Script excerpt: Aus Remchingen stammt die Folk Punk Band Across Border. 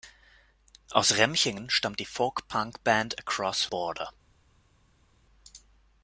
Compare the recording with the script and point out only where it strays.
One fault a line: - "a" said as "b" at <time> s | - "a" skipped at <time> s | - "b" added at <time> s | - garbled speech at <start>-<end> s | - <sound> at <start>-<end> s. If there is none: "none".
none